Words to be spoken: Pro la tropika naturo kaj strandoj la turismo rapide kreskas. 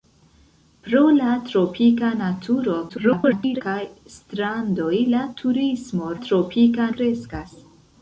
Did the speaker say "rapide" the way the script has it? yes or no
no